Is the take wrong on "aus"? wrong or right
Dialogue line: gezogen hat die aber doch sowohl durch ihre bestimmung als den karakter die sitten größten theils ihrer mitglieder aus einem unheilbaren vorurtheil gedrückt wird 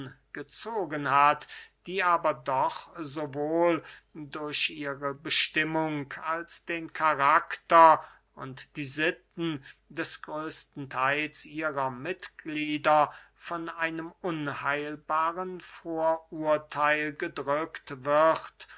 wrong